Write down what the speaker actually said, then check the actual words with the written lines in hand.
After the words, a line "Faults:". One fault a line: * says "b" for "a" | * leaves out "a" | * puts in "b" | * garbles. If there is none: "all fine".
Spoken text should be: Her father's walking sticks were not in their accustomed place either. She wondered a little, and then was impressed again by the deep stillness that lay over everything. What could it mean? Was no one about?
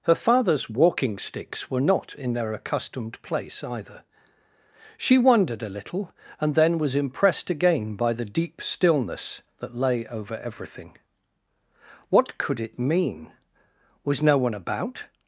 Her father's walking sticks were not in their accustomed place either. She wondered a little, and then was impressed again by the deep stillness that lay over everything. What could it mean? Was no one about?
Faults:
all fine